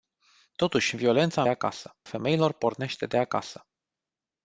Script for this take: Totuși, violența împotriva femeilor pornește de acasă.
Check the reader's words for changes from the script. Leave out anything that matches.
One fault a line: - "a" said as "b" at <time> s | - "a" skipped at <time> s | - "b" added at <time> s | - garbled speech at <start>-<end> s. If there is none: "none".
- "împotriva" said as "acasă" at 1.5 s